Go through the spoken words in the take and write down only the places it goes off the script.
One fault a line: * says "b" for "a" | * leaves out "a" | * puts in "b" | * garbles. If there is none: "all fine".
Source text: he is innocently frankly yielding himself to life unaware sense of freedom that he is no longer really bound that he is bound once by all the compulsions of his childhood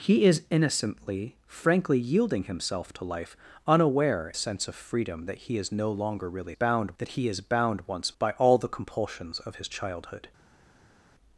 all fine